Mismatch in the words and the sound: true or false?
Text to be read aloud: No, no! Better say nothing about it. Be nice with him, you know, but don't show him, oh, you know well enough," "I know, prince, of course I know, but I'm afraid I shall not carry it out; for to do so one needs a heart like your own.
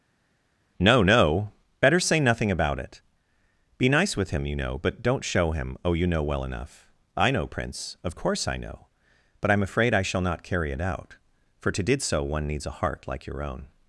true